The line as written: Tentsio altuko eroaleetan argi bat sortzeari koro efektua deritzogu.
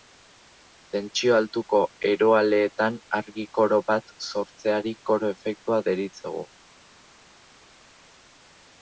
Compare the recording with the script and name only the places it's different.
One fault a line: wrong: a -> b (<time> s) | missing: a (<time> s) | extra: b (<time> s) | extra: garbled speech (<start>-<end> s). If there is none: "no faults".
extra: koro (3.6 s)